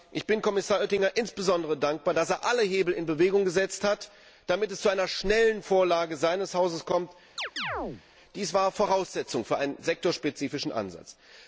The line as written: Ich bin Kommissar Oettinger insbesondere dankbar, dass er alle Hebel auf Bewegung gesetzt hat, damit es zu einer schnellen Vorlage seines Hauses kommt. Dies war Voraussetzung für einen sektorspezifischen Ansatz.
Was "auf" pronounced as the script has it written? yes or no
no